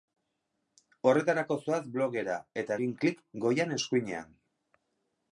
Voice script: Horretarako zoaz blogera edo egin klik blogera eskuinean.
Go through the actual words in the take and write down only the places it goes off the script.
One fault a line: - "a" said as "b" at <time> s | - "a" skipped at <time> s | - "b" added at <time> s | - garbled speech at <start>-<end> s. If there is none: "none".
- "edo" said as "eta" at 2.6 s
- "blogera" said as "goian" at 3.5 s